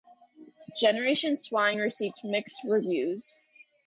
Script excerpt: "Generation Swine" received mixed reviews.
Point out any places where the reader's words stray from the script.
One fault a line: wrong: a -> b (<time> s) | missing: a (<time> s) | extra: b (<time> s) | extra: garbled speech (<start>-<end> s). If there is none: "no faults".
no faults